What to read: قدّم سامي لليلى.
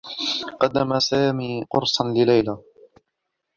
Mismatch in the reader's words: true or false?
true